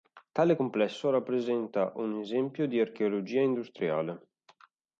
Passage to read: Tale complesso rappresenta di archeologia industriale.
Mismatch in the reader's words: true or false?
true